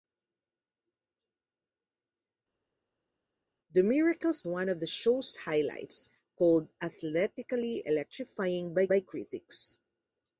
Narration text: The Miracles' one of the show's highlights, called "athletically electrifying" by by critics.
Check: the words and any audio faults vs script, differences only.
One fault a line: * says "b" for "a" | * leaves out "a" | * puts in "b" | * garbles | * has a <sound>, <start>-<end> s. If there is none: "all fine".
all fine